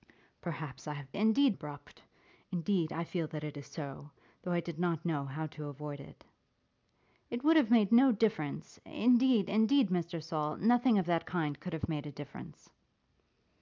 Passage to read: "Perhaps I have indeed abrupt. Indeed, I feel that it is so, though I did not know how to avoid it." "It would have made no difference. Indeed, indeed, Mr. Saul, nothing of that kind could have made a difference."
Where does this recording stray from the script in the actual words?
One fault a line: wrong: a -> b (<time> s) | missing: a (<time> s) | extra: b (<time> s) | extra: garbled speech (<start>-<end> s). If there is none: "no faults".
no faults